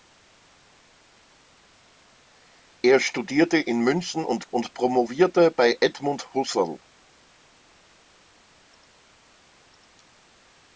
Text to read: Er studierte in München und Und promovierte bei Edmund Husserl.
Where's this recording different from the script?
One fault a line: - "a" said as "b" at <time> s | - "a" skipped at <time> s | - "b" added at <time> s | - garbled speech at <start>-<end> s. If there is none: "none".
none